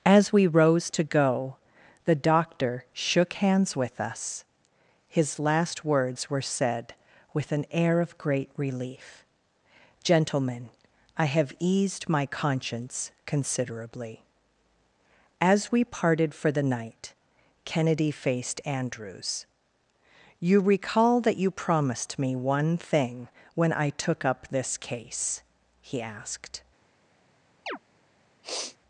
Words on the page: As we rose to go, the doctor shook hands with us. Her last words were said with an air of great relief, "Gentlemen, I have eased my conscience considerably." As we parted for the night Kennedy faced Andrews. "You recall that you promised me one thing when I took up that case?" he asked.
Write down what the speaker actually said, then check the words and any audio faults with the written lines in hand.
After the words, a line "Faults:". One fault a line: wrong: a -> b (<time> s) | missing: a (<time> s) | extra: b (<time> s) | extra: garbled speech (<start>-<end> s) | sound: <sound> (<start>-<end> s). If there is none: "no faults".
As we rose to go, the doctor shook hands with us. His last words were said with an air of great relief, "Gentlemen, I have eased my conscience considerably." As we parted for the night Kennedy faced Andrews. "You recall that you promised me one thing when I took up this case?" he asked.
Faults:
wrong: Her -> His (5.1 s)
wrong: that -> this (24.5 s)
sound: chirp (27.7-27.8 s)
sound: sniff (28.4-28.8 s)